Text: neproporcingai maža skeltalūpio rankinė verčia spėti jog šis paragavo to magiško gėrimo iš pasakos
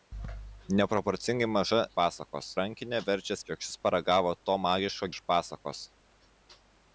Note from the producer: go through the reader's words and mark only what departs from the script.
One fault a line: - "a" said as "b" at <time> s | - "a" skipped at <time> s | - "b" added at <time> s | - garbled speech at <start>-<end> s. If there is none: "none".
- "skeltalūpio" said as "pasakos" at 2.0 s
- "spėti" skipped at 3.4 s
- "gėrimo" skipped at 5.1 s